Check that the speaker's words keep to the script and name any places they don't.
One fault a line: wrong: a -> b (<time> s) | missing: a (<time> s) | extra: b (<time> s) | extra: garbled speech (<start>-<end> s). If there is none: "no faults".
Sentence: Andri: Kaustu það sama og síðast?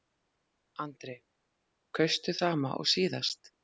missing: það (2.4 s)